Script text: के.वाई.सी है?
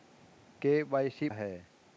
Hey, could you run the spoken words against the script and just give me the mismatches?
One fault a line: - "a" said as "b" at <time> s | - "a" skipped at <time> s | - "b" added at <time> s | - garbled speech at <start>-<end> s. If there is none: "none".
none